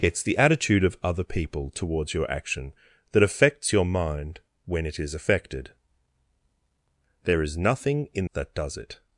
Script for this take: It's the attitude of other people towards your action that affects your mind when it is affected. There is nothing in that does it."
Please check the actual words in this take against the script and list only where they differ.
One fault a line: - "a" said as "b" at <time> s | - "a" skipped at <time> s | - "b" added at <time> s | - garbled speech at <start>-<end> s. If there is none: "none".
none